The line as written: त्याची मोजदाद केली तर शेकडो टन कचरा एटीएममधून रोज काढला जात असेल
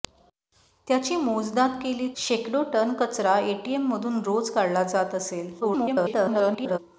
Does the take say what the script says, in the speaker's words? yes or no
no